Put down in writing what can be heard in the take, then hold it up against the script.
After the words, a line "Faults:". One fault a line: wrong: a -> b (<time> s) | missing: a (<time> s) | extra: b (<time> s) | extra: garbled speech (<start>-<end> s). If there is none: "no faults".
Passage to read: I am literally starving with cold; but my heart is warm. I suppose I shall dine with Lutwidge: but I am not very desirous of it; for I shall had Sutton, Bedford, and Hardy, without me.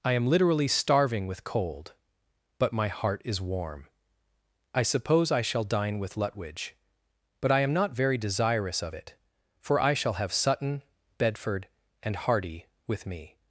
I am literally starving with cold; but my heart is warm. I suppose I shall dine with Lutwidge: but I am not very desirous of it; for I shall have Sutton, Bedford, and Hardy, with me.
Faults:
wrong: had -> have (10.1 s)
wrong: without -> with (12.9 s)